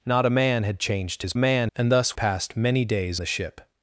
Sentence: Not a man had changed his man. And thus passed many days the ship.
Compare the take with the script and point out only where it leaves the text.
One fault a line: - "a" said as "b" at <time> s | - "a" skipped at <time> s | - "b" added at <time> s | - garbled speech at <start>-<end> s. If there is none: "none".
none